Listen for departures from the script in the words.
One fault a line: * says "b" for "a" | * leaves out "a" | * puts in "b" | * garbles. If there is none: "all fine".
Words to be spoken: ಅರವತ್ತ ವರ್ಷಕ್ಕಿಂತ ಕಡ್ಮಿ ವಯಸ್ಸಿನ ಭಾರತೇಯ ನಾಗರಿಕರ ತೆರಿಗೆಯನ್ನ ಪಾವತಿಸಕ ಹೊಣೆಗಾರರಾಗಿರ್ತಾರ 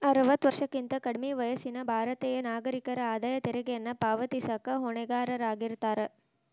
* puts in "ಆದಾಯ"